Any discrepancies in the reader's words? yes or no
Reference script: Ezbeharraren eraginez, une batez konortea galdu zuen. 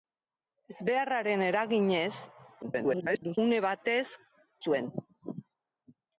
yes